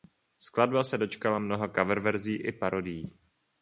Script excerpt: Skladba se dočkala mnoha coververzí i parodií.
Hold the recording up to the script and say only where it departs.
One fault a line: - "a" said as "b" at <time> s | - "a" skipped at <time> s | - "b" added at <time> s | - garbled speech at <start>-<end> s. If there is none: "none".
none